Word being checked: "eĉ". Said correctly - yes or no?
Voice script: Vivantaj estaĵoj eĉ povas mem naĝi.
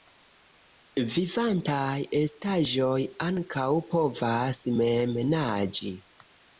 no